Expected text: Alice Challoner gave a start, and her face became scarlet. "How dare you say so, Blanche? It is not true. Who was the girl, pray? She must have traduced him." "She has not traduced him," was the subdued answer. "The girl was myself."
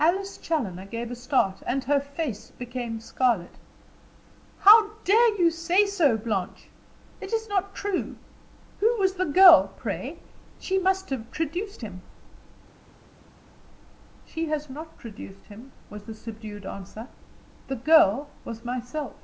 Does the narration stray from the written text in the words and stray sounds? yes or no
no